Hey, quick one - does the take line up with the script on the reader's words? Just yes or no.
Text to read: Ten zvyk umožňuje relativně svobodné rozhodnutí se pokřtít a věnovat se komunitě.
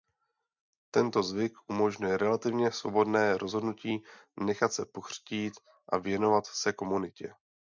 no